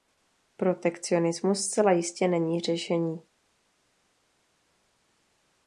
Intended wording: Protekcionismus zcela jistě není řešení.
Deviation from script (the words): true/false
false